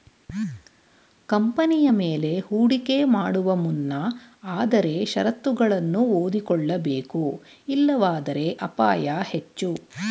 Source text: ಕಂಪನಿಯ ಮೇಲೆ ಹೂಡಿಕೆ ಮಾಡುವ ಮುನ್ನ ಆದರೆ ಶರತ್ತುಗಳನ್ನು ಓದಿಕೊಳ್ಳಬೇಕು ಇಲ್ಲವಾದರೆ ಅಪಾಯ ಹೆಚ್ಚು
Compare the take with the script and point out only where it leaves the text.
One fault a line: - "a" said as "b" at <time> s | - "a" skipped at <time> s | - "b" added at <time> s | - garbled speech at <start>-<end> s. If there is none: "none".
none